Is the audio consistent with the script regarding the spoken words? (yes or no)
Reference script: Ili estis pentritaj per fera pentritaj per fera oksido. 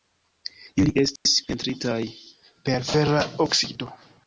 no